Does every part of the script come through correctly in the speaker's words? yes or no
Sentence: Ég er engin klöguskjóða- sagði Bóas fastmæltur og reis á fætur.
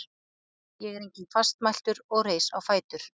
no